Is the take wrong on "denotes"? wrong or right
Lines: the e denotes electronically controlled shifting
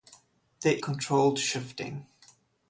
wrong